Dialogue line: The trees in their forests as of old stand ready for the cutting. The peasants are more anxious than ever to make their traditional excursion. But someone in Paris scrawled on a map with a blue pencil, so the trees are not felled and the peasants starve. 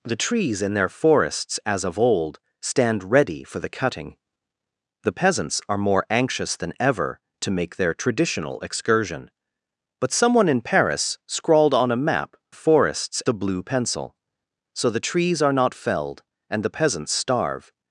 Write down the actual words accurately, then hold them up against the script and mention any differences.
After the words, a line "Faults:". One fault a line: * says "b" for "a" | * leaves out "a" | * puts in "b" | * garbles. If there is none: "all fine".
The trees in their forests as of old stand ready for the cutting. The peasants are more anxious than ever to make their traditional excursion. But someone in Paris scrawled on a map forests a blue pencil, so the trees are not felled and the peasants starve.
Faults:
* says "forests" for "with"